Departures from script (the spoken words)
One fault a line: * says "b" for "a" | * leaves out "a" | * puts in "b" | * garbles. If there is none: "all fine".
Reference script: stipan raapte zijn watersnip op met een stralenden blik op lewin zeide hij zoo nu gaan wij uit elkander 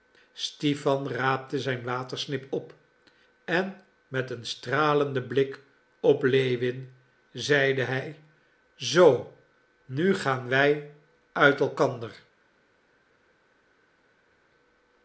* puts in "en"